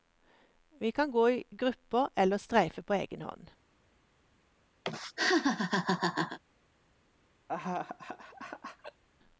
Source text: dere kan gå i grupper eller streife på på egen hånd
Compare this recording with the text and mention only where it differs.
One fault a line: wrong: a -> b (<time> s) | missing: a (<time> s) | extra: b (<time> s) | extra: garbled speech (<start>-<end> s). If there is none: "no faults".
wrong: dere -> vi (0.8 s)
missing: på (2.9 s)